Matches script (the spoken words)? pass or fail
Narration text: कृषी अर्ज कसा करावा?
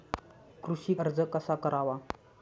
pass